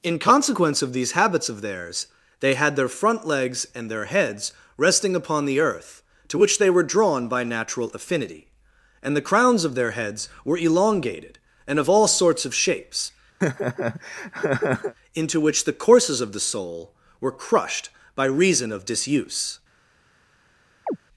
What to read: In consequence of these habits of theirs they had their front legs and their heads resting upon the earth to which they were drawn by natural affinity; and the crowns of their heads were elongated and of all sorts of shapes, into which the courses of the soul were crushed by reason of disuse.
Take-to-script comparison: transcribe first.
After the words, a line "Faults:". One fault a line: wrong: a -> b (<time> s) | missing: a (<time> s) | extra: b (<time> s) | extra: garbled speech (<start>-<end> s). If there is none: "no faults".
In consequence of these habits of theirs they had their front legs and their heads resting upon the earth to which they were drawn by natural affinity; and the crowns of their heads were elongated and of all sorts of shapes, into which the courses of the soul were crushed by reason of disuse.
Faults:
no faults